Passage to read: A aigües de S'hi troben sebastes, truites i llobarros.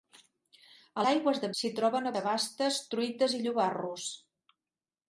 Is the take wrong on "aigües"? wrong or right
right